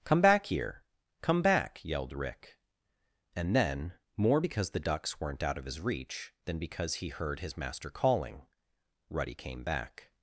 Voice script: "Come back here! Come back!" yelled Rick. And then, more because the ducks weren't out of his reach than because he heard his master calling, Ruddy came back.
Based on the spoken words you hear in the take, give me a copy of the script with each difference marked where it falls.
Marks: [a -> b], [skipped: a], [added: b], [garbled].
"Come back here! Come back!" yelled Rick. And then, more because the ducks weren't out of his reach than because he heard his master calling, Ruddy came back.